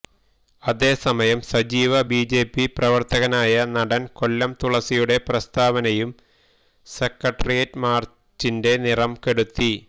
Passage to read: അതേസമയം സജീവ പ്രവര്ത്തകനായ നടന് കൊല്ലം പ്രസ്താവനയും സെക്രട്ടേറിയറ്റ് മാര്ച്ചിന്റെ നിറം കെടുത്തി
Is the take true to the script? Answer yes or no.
no